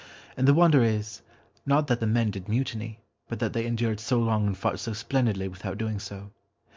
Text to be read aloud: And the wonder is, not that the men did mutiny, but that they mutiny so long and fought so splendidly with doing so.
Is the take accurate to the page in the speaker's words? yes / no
no